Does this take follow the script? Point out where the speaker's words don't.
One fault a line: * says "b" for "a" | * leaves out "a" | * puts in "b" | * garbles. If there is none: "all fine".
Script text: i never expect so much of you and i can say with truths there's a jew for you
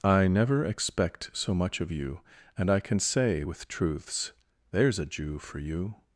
all fine